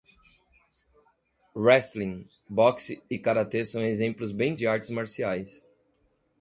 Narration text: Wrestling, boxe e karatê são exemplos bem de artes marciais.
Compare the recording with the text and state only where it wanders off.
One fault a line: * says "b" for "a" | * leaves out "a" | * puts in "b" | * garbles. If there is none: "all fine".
all fine